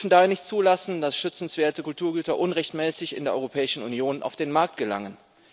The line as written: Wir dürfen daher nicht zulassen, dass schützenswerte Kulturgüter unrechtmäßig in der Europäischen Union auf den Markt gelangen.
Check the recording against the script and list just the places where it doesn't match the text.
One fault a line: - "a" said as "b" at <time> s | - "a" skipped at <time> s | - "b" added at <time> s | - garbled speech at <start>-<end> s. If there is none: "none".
none